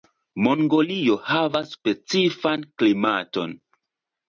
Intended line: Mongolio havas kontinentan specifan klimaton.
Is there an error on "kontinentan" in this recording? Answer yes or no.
yes